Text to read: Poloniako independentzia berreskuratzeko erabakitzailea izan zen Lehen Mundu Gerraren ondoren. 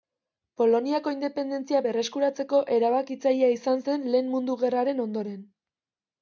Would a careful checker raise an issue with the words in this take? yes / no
no